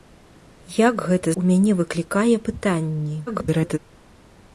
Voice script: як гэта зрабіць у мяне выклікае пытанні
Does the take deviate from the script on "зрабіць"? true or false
true